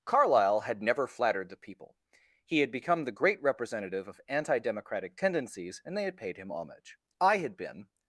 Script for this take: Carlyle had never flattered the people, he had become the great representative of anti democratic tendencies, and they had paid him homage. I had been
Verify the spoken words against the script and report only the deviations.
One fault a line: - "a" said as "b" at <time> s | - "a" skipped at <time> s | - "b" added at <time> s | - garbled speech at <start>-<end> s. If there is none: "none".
none